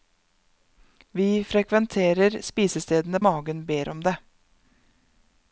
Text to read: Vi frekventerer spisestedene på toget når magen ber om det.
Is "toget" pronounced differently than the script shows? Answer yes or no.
yes